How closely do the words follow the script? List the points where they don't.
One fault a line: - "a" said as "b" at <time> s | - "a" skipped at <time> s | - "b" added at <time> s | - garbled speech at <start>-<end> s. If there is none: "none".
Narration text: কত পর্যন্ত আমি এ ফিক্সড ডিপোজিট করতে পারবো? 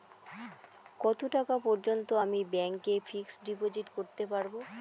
- "টাকা" added at 1.4 s
- "ব্যাংক" added at 2.5 s